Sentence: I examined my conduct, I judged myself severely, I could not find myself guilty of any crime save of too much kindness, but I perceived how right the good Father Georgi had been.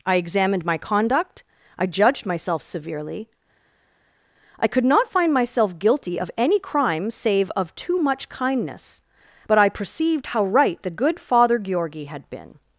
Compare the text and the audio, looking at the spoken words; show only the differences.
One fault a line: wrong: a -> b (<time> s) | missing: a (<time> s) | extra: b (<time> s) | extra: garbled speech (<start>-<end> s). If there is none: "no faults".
no faults